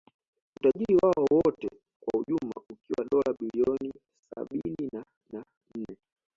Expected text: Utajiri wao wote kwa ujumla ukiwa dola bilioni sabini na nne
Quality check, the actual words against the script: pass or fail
fail